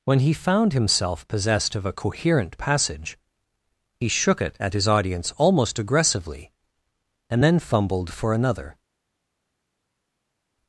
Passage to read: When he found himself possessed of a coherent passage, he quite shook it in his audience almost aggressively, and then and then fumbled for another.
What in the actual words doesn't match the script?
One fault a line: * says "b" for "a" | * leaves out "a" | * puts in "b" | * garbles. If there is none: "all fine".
* leaves out "quite"
* says "at" for "in"
* leaves out "and then"